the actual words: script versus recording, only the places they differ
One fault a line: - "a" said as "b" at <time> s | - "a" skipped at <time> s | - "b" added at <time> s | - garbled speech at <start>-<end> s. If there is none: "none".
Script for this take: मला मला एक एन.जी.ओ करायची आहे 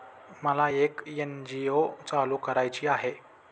- "मला" skipped at 0.7 s
- "चालू" added at 2.1 s